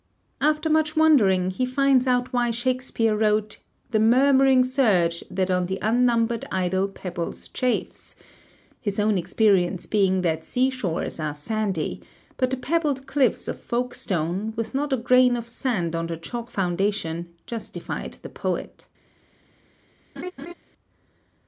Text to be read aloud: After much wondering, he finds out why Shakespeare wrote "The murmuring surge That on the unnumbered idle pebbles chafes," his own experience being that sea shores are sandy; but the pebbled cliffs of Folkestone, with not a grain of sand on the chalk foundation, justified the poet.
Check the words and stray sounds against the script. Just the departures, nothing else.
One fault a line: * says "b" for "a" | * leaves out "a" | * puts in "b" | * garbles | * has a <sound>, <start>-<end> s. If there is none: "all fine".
* has a laugh, 20.2-20.5 s